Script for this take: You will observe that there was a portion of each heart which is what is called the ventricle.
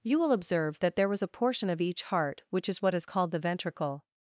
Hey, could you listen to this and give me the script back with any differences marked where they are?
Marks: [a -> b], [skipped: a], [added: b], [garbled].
You will observe that there was a portion of each heart which is what is called the ventricle.